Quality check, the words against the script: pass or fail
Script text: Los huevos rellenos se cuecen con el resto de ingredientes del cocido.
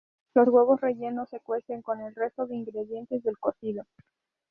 pass